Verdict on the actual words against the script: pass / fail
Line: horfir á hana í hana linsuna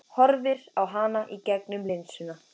fail